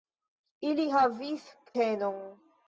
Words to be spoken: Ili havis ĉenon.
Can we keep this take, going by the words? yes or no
yes